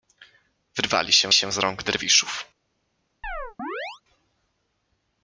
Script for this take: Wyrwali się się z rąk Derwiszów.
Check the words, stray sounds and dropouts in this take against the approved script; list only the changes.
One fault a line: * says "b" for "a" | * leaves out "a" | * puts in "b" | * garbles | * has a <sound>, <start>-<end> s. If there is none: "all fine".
* has a chirp, 3.2-4.0 s